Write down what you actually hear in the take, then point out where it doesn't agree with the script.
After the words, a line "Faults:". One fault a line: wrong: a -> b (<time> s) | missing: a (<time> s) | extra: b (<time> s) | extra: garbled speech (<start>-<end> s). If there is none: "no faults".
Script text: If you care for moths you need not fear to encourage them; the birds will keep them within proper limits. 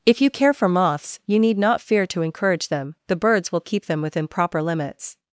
If you care for moths you need not fear to encourage them; the birds will keep them within proper limits.
Faults:
no faults